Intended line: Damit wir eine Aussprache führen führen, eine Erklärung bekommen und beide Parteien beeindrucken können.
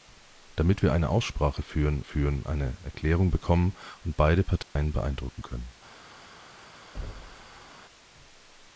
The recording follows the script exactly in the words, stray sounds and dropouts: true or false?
false